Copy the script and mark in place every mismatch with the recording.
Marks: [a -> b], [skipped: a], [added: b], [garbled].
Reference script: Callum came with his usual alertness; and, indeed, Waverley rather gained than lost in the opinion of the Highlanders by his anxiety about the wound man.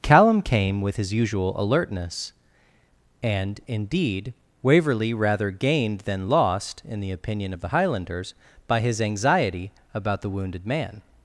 Callum came with his usual alertness; and, indeed, Waverley rather gained than lost in the opinion of the Highlanders by his anxiety about the [wound -> wounded] man.